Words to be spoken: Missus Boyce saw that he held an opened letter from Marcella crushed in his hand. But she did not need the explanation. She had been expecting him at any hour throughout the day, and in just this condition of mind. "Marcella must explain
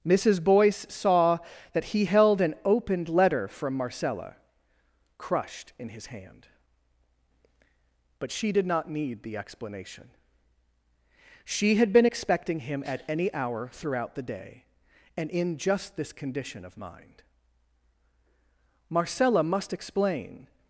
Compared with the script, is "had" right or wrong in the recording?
right